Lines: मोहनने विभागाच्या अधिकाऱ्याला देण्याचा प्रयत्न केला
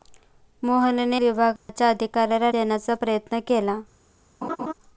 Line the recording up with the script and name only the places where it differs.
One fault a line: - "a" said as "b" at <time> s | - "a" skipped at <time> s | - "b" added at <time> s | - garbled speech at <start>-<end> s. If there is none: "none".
none